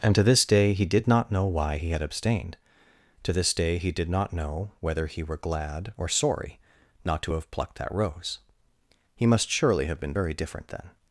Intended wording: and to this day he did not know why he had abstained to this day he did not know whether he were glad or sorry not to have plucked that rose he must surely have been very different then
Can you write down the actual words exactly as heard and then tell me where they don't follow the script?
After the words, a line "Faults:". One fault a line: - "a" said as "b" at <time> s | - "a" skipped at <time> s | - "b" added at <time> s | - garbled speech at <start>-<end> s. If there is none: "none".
and to this day he did not know why he had abstained to this day he did not know whether he were glad or sorry not to have plucked that rose he must surely have been very different then
Faults:
none